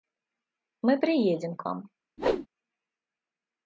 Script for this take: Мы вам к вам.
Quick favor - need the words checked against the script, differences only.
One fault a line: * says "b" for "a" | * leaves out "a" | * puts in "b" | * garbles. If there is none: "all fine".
* says "приедем" for "вам"